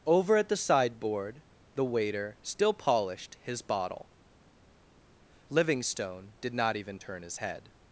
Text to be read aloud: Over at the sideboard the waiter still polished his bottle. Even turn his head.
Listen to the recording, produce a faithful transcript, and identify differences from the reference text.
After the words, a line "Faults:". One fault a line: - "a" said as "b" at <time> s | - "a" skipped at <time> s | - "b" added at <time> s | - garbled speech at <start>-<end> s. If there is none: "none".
Over at the sideboard the waiter still polished his bottle. Livingstone did not even turn his head.
Faults:
- "Livingstone did not" added at 5.5 s